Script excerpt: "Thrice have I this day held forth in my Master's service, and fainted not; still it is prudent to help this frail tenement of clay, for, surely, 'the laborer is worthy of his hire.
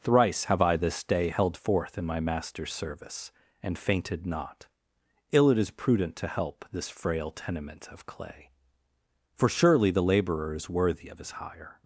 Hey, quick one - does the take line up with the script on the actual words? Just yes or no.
no